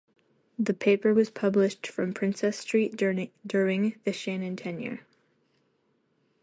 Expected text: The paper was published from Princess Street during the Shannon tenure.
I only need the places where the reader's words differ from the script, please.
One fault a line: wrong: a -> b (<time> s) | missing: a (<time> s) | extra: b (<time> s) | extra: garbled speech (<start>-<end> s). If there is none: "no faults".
no faults